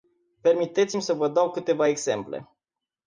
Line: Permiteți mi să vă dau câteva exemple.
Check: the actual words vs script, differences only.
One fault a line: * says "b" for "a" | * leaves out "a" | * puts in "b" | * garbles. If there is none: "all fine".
all fine